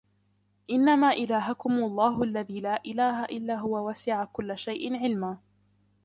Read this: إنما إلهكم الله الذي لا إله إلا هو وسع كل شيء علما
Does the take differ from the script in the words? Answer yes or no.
no